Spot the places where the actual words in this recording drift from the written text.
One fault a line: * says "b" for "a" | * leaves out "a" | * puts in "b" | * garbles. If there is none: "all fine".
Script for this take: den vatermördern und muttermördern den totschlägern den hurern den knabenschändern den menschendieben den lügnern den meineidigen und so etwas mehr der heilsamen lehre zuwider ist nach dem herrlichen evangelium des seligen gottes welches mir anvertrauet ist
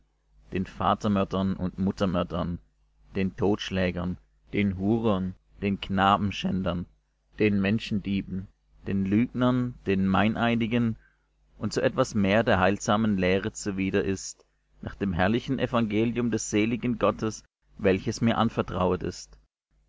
all fine